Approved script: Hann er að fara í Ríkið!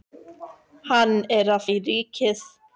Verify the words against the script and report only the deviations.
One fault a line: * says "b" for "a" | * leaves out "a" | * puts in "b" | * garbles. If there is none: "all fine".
* leaves out "fara"